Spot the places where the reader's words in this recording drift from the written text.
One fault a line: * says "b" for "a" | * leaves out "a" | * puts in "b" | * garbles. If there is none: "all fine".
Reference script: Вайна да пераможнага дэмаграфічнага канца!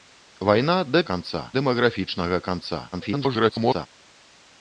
* says "канца" for "пераможнага"
* garbles